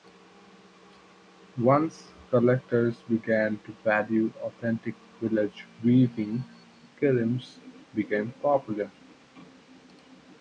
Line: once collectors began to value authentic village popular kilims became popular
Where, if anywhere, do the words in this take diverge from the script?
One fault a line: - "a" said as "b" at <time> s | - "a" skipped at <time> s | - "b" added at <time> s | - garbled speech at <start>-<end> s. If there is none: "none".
- "popular" said as "weaving" at 5.8 s